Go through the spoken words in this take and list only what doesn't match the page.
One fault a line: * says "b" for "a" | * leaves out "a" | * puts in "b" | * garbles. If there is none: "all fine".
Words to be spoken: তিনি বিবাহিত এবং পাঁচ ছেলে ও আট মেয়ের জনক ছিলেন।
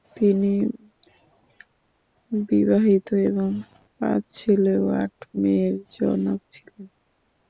all fine